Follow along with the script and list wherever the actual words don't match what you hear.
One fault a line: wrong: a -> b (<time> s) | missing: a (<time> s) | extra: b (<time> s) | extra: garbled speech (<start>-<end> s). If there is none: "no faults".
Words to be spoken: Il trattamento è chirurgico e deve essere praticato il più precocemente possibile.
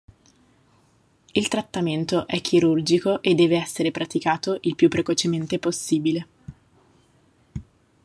no faults